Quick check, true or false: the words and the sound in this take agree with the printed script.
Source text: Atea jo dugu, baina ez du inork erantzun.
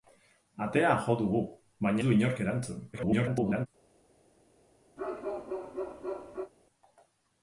false